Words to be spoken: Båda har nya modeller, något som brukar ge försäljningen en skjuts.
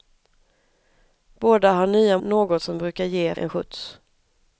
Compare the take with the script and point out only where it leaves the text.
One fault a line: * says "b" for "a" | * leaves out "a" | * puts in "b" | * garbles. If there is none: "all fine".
* leaves out "modeller"
* leaves out "försäljningen"